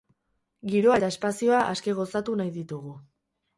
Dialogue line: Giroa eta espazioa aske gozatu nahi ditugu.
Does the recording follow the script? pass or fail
pass